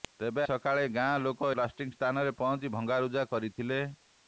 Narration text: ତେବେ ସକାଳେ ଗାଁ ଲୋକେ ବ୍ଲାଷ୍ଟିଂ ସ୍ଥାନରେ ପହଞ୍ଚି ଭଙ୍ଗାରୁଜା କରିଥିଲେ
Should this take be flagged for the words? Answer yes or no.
no